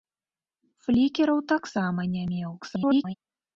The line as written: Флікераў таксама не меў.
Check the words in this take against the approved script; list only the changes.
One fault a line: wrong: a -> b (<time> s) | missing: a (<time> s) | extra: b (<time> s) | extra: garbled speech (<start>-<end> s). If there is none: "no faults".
extra: garbled speech (2.6-3.1 s)